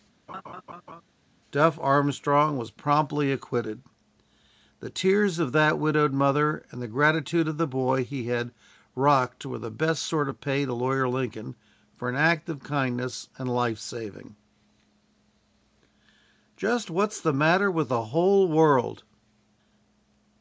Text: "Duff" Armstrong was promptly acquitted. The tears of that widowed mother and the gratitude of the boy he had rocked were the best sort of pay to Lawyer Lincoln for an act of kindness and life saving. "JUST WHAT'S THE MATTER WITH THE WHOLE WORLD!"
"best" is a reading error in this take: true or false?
false